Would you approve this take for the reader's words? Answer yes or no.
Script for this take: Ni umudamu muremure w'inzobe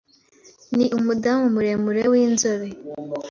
yes